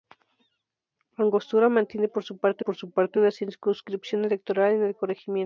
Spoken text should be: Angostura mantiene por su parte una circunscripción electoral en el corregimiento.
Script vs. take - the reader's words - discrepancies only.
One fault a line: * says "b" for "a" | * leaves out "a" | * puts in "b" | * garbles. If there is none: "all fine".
* puts in "por su parte"